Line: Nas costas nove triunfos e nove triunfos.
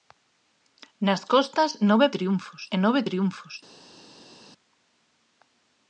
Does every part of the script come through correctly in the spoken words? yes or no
yes